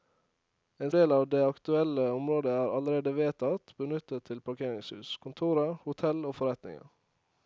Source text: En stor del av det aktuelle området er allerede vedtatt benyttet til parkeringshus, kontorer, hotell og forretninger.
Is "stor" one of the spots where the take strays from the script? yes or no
yes